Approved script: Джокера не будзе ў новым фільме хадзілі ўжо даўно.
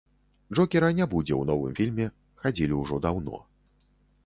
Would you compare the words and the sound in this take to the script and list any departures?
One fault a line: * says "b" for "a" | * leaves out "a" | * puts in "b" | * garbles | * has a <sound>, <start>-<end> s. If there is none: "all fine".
all fine